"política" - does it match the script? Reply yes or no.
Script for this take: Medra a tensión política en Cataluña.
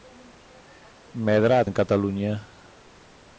no